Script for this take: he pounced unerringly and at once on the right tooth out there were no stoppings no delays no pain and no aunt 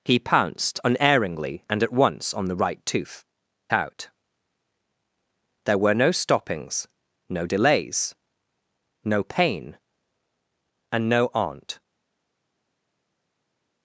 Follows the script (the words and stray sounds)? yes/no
yes